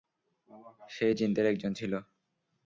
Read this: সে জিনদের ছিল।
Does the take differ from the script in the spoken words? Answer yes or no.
yes